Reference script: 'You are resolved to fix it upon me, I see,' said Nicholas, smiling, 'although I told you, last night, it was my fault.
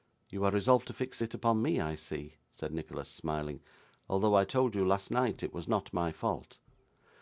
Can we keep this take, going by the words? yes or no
no